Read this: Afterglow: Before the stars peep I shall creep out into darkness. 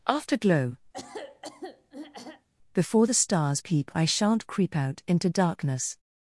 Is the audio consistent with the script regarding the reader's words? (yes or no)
no